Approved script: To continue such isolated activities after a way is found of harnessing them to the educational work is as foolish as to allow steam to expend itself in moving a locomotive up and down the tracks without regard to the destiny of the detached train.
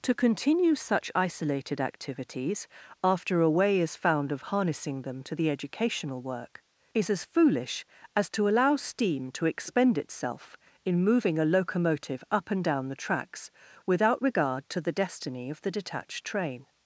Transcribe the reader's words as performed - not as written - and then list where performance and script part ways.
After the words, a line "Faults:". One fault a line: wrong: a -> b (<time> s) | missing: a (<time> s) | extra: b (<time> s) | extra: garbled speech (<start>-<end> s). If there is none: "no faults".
To continue such isolated activities after a way is found of harnessing them to the educational work is as foolish as to allow steam to expend itself in moving a locomotive up and down the tracks without regard to the destiny of the detached train.
Faults:
no faults